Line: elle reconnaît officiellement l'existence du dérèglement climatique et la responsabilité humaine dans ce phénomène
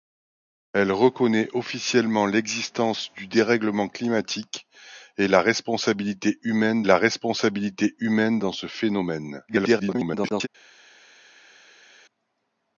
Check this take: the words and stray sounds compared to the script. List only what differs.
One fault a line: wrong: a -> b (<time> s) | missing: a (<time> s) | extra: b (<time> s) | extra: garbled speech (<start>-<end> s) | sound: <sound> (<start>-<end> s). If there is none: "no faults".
extra: la responsabilité humaine (6.8 s)
extra: garbled speech (9.5-10.5 s)